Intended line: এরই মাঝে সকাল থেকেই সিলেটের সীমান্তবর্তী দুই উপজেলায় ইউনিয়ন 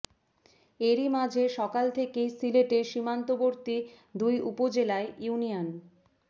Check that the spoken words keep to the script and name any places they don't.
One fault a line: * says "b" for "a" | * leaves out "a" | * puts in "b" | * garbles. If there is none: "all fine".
all fine